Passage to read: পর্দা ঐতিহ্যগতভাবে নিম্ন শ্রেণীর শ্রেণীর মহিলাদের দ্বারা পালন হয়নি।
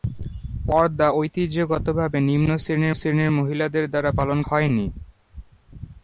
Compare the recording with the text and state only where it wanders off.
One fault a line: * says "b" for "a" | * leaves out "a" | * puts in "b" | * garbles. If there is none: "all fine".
all fine